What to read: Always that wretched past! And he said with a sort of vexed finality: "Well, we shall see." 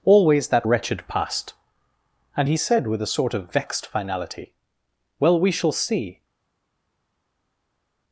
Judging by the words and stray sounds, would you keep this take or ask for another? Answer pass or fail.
pass